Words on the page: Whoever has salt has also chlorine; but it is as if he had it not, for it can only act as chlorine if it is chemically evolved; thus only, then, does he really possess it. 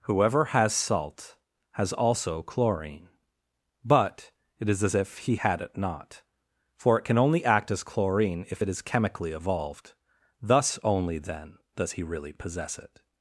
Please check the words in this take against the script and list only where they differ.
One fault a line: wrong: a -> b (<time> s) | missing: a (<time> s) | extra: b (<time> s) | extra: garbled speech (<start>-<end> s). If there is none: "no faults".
no faults